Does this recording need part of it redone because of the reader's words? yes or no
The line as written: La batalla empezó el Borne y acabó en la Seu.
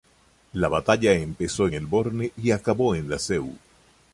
no